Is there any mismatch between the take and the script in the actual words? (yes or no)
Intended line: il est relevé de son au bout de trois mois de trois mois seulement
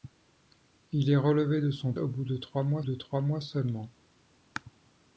no